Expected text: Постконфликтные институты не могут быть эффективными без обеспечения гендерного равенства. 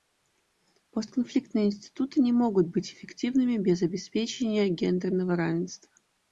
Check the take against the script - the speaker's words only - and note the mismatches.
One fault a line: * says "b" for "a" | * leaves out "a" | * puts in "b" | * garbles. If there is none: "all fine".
all fine